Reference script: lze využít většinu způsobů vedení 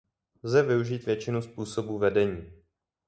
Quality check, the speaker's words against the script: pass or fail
pass